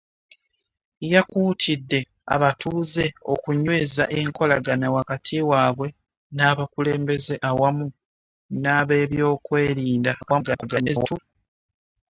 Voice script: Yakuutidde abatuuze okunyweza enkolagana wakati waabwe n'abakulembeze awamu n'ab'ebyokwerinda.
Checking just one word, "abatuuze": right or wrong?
right